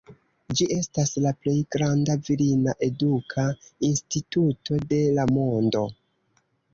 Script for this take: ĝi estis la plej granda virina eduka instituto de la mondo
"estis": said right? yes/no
no